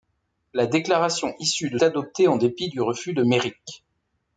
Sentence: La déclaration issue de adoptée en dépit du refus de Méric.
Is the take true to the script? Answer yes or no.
yes